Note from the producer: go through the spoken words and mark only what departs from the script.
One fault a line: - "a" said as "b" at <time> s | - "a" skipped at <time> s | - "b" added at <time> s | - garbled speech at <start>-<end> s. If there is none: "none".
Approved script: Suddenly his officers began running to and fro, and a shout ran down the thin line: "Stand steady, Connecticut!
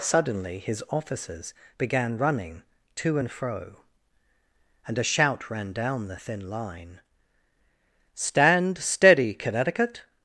none